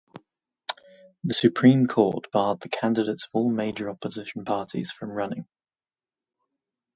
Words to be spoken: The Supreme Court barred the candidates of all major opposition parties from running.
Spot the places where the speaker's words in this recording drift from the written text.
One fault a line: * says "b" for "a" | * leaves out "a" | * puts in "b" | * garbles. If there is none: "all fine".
all fine